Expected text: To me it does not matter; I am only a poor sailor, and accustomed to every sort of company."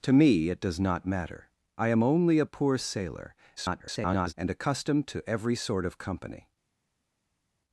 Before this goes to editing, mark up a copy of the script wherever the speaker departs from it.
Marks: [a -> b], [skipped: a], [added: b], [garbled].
To me it does not matter; I am only a poor sailor, [garbled] and accustomed to every sort of company."